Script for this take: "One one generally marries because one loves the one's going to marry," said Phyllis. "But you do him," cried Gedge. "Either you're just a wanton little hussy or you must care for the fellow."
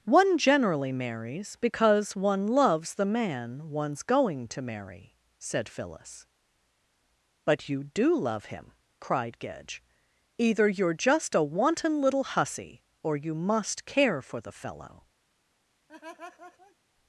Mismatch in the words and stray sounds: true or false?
true